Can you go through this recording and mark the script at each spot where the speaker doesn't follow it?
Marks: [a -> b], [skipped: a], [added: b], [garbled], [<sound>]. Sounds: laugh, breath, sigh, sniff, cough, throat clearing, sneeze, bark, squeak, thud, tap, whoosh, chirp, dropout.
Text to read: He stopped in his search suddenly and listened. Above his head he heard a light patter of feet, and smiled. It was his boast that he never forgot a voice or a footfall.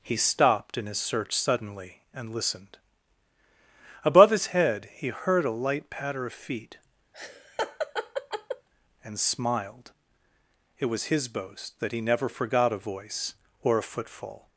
He stopped in his search suddenly and listened. Above his head he heard a light patter of feet, [laugh] and smiled. It was his boast that he never forgot a voice or a footfall.